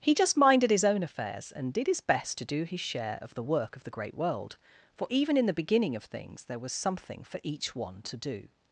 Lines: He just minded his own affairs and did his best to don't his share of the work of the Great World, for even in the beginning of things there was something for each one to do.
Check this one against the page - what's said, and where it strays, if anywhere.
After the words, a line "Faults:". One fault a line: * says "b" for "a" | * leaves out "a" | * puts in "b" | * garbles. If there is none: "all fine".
He just minded his own affairs and did his best to do his share of the work of the Great World, for even in the beginning of things there was something for each one to do.
Faults:
* says "do" for "don't"